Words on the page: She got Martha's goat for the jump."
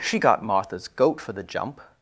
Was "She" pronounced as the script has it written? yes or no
yes